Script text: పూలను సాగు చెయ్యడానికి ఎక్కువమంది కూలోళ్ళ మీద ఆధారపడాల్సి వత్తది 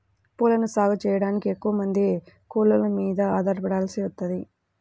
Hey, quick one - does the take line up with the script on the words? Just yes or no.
yes